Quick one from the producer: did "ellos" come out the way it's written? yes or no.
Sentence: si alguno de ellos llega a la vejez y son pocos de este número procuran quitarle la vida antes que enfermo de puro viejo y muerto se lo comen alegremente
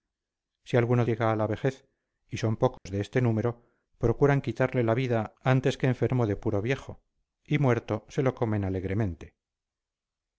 no